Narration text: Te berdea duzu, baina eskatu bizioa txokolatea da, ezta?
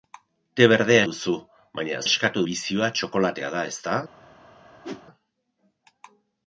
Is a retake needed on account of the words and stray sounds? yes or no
yes